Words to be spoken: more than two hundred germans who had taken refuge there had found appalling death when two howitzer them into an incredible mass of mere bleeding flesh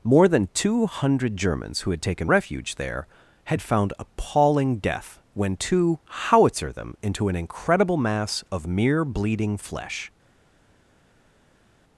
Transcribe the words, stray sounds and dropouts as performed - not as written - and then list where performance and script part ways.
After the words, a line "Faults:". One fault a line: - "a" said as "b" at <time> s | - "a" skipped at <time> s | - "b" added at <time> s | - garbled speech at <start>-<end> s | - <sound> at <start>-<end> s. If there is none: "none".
more than two hundred germans who had taken refuge there had found appalling death when two howitzer them into an incredible mass of mere bleeding flesh
Faults:
none